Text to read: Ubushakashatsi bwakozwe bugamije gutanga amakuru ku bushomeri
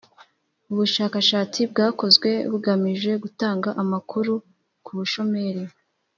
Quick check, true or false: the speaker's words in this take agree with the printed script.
true